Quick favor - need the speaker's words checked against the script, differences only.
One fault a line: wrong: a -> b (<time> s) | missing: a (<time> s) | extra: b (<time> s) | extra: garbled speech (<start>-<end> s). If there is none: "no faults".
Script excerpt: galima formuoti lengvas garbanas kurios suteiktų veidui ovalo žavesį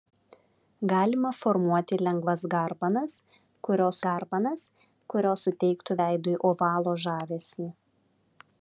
extra: garbanas kurios (4.1 s)